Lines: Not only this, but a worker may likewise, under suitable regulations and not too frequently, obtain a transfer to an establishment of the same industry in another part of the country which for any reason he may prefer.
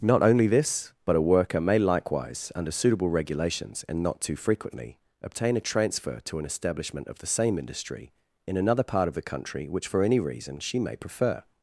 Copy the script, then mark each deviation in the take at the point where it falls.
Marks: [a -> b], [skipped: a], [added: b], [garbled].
Not only this, but a worker may likewise, under suitable regulations and not too frequently, obtain a transfer to an establishment of the same industry in another part of the country which for any reason [he -> she] may prefer.